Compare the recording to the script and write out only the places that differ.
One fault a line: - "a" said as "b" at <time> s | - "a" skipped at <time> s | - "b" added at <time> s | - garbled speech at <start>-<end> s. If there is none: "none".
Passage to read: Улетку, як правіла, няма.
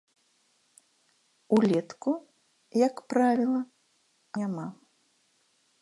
none